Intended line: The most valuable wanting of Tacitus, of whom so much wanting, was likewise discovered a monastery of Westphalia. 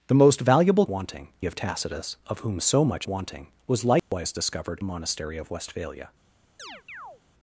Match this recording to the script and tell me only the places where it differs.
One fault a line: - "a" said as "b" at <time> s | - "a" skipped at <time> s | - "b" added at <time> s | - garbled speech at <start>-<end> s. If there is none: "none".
none